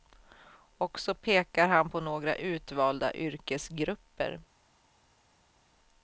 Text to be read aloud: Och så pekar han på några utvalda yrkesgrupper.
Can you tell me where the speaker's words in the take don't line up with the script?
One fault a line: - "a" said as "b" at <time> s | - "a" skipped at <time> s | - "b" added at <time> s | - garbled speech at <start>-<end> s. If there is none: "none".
none